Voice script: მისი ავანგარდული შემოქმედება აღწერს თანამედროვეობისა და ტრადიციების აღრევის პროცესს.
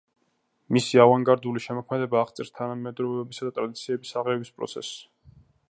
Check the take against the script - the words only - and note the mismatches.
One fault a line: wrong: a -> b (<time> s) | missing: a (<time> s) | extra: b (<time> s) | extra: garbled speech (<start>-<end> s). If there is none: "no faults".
no faults